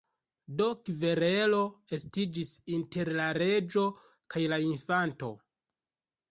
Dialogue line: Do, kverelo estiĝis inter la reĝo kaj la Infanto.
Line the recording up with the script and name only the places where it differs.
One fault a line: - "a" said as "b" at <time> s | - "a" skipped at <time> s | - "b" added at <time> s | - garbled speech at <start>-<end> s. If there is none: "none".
none